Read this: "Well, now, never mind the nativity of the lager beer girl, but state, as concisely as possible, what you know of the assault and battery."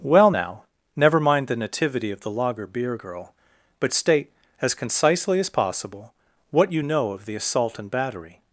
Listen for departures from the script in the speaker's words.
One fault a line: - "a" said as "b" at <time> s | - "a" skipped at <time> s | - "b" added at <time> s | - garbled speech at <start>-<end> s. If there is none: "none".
none